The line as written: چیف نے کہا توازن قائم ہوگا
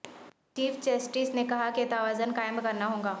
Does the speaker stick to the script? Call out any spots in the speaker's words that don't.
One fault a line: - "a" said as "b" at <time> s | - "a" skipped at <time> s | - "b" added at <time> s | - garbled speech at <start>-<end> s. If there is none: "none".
- "جسٹس" added at 0.8 s
- "کہ" added at 1.7 s
- "کرنا" added at 2.6 s